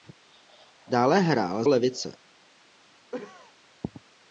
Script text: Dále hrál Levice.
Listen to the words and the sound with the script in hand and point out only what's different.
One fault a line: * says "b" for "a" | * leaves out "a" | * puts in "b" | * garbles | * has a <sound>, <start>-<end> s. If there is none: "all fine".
* has a cough, 3.1-3.5 s